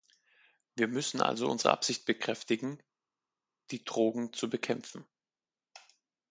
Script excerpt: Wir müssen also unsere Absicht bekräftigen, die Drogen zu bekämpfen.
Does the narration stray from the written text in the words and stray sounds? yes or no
no